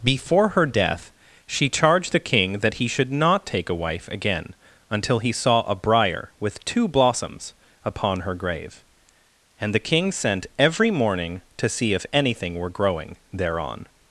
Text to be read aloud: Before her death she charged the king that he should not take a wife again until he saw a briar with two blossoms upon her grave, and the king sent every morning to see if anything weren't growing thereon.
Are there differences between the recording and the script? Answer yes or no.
yes